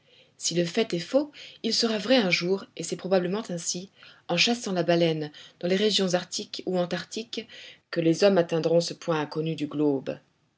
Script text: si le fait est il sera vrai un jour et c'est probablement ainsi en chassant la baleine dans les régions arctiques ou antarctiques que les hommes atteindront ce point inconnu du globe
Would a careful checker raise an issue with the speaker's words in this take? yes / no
yes